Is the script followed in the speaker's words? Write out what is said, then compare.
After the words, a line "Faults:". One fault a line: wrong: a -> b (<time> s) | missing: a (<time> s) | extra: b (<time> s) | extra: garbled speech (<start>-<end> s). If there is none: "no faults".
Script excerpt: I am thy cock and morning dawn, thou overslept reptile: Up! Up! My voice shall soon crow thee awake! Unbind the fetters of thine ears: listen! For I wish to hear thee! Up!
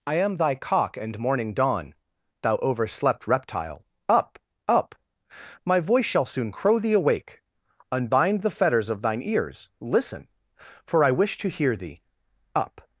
I am thy cock and morning dawn, thou overslept reptile: Up! Up! My voice shall soon crow thee awake! Unbind the fetters of thine ears: listen! For I wish to hear thee! Up!
Faults:
no faults